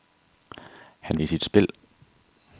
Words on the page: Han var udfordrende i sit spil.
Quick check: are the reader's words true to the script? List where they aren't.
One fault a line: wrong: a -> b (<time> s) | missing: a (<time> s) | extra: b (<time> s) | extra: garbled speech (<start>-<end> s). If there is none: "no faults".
missing: var udfordrende (1.2 s)